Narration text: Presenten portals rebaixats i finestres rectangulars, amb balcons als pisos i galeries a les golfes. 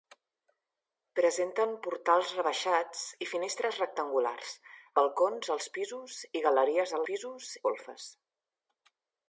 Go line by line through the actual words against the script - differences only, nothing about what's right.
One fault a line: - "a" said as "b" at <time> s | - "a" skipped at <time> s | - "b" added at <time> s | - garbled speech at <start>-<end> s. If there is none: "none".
- "amb" skipped at 4.5 s
- "les" said as "pisos" at 7.1 s